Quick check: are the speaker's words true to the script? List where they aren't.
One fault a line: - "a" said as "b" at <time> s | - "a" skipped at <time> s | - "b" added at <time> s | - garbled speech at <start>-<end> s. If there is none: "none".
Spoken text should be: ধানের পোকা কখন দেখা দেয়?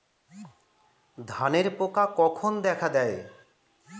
none